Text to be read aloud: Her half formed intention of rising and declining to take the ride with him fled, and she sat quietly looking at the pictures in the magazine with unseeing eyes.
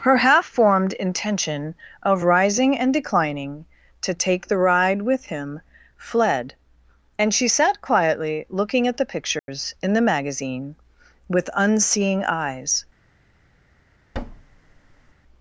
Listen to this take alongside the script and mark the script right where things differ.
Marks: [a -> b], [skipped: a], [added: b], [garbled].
Her half formed intention of rising and declining to take the ride with him fled, and she sat quietly looking at the pictures in the magazine with unseeing eyes.